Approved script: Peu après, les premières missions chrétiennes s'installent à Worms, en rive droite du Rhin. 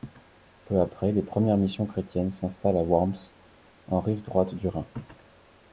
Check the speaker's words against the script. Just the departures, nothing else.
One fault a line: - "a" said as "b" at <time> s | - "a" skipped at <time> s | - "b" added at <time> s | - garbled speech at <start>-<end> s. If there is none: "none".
none